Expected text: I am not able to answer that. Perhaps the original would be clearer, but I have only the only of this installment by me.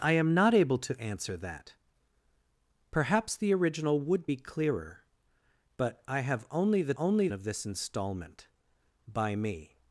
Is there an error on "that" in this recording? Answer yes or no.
no